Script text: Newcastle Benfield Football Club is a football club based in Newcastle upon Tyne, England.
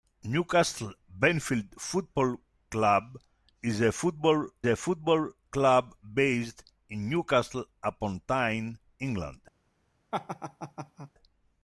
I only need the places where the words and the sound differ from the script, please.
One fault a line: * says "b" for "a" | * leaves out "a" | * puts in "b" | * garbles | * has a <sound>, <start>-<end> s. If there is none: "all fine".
* puts in "a football"
* has a laugh, 10.1-11.1 s